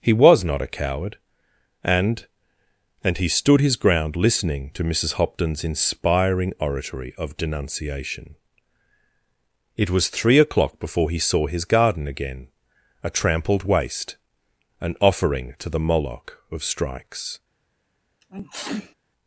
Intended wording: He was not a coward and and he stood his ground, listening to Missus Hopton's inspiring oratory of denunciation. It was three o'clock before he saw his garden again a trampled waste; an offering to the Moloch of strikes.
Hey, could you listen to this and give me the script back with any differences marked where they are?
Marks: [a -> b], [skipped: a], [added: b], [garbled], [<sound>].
He was not a coward and and he stood his ground, listening to Missus Hopton's inspiring oratory of denunciation. It was three o'clock before he saw his garden again a trampled waste; an offering to the Moloch of strikes. [sneeze]